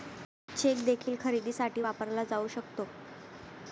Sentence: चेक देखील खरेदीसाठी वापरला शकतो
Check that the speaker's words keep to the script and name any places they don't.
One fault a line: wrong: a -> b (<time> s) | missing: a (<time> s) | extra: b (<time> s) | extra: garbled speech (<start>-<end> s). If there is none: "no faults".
extra: जाऊ (2.2 s)